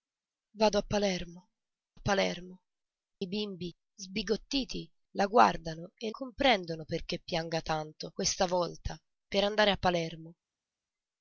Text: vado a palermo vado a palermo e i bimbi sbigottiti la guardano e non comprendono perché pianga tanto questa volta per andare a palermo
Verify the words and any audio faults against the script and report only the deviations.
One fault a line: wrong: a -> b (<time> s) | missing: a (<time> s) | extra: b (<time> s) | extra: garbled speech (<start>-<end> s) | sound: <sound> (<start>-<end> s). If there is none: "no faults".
missing: vado (1.4 s)
missing: e (2.6 s)
missing: non (6.1 s)